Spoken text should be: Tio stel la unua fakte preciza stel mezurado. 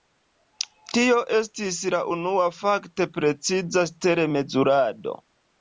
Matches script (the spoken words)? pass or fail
fail